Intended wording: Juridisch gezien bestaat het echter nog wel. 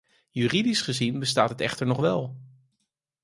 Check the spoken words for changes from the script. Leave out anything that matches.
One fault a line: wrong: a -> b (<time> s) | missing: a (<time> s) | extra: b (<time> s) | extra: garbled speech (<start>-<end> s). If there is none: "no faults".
no faults